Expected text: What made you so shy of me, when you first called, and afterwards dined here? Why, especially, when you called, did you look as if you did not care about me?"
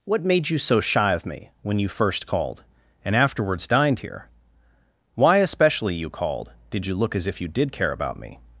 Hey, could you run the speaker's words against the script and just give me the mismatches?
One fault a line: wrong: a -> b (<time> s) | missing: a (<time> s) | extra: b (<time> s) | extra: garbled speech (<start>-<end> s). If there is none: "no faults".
missing: when (6.0 s)
missing: not (7.7 s)